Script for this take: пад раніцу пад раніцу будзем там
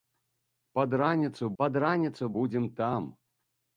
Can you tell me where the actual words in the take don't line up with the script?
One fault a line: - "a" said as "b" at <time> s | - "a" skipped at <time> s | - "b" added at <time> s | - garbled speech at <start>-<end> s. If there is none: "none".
none